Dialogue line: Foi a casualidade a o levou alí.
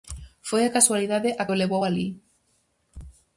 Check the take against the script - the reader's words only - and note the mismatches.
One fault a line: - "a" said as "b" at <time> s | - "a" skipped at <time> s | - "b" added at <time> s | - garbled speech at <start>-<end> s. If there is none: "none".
none